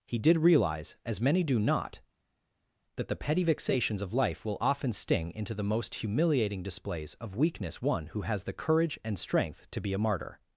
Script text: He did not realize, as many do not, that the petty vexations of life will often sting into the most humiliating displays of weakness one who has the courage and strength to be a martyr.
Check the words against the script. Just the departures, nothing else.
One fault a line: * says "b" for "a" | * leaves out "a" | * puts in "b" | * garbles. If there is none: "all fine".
* leaves out "not"